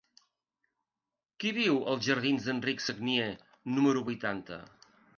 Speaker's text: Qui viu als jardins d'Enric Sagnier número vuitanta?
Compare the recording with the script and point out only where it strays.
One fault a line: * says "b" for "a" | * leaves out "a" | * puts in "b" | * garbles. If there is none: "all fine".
all fine